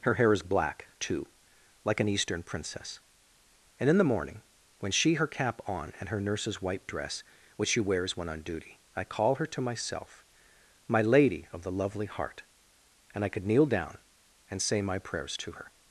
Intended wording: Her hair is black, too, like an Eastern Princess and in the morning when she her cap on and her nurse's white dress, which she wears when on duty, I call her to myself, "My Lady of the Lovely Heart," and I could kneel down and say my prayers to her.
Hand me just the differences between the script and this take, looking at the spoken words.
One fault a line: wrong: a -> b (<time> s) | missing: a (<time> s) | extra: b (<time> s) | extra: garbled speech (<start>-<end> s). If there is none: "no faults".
no faults